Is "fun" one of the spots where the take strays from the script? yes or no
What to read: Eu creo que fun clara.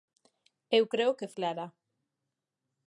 yes